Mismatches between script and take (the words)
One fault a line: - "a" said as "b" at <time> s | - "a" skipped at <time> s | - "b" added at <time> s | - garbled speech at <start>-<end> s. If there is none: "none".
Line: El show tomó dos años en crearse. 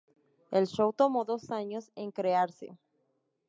none